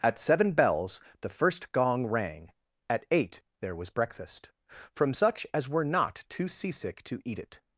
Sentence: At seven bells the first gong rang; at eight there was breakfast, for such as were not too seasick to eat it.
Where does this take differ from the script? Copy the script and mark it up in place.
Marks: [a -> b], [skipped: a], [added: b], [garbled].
At seven bells the first gong rang; at eight there was breakfast, [for -> from] such as were not too seasick to eat it.